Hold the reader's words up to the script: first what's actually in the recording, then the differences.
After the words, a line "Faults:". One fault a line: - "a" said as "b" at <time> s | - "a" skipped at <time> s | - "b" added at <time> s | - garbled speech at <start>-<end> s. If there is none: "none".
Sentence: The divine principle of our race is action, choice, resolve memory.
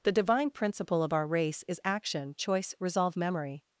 The divine principle of our race is action, choice, resolve memory.
Faults:
none